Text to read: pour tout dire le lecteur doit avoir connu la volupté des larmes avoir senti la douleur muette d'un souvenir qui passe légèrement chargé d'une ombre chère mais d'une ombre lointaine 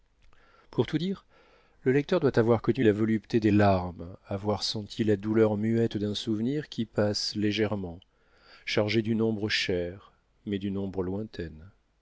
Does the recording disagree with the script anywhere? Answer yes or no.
no